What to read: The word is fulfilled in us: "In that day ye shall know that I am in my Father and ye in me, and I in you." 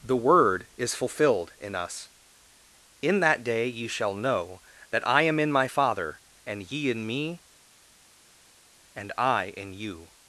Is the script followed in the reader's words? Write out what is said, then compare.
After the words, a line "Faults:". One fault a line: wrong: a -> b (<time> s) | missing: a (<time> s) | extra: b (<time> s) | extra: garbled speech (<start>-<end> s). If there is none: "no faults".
The word is fulfilled in us: "In that day ye shall know that I am in my Father and ye in me, and I in you."
Faults:
no faults